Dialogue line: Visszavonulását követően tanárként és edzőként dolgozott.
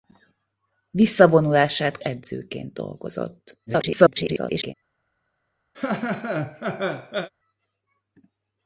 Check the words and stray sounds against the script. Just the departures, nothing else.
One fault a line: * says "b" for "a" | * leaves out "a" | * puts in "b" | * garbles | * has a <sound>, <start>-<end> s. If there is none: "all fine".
* leaves out "követően tanárként és"
* garbles
* has a laugh, 5.7-7.3 s